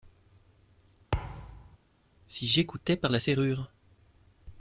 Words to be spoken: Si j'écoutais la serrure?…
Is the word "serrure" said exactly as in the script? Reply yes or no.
yes